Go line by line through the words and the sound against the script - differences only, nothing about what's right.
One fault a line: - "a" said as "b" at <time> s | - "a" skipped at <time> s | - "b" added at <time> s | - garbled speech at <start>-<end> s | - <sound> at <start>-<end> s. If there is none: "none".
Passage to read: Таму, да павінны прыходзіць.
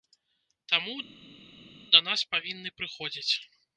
- "нас" added at 2.1 s